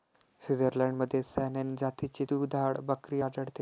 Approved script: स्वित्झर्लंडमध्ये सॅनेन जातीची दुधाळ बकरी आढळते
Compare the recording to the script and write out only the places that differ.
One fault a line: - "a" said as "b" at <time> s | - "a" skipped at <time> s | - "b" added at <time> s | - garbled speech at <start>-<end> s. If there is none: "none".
none